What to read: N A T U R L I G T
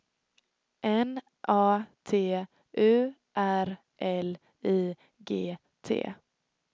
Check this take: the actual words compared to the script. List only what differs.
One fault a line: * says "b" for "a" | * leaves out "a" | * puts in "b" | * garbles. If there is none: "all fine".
all fine